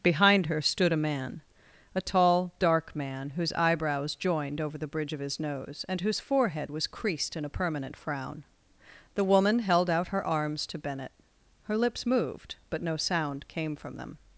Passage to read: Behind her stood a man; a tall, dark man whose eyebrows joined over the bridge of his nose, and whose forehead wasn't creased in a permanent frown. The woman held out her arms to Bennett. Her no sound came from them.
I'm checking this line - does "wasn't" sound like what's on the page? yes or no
no